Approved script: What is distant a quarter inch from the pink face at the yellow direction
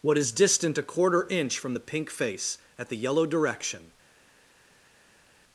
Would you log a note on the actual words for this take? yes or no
no